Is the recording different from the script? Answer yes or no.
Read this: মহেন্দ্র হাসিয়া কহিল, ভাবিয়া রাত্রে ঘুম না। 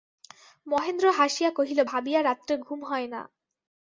yes